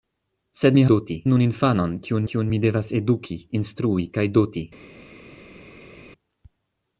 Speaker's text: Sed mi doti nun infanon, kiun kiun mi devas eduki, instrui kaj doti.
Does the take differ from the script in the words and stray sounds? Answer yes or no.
no